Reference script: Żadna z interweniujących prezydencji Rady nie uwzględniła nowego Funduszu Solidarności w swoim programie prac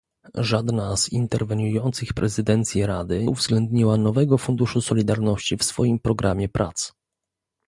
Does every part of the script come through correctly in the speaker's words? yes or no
no